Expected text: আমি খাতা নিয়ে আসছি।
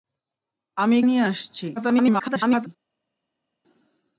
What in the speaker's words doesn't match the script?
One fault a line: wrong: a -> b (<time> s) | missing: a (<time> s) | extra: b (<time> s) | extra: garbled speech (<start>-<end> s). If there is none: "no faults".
missing: খাতা (1.0 s)
extra: garbled speech (1.8-2.7 s)